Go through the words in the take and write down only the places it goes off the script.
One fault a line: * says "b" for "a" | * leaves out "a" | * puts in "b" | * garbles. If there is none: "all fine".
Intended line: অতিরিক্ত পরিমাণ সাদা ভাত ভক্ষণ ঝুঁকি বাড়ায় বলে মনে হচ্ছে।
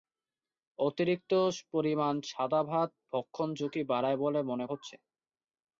all fine